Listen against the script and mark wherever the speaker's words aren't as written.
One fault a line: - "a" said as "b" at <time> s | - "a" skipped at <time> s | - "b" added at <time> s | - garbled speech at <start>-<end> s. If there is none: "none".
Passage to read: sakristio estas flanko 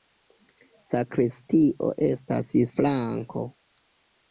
none